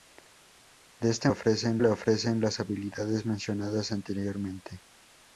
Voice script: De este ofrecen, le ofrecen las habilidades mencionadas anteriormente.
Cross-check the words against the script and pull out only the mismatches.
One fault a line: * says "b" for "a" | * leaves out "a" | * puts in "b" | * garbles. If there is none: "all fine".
all fine